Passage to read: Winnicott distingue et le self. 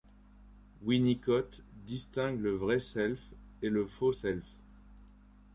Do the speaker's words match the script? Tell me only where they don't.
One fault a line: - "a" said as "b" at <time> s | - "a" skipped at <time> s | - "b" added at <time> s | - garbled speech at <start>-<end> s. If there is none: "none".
- "le vrai self" added at 2.4 s
- "faux" added at 3.9 s